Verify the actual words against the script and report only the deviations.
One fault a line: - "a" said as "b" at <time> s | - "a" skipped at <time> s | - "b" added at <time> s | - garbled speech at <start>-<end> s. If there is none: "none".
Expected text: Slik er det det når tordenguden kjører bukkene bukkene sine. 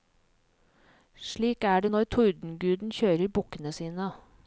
- "det" skipped at 1.9 s
- "bukkene" skipped at 3.7 s